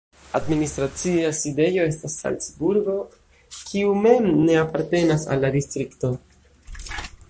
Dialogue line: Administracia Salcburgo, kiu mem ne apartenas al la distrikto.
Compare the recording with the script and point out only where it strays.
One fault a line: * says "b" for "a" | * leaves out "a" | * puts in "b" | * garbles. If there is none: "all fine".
* puts in "sidejo estas"